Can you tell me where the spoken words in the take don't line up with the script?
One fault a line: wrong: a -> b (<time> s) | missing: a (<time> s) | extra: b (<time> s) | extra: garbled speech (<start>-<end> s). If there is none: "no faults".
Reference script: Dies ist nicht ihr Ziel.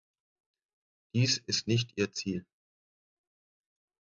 no faults